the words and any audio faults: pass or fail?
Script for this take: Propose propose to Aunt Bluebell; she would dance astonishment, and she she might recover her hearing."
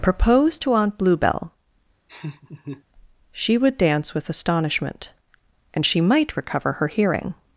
fail